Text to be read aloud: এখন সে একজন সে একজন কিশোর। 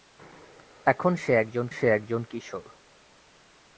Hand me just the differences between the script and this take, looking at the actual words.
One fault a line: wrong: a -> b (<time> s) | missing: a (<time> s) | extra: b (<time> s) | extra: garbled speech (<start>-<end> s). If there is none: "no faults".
no faults